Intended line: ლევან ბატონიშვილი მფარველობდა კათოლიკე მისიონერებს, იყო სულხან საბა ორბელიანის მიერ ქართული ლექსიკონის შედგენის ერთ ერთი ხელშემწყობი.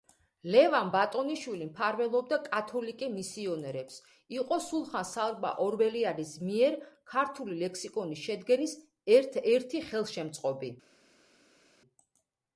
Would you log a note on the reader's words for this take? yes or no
no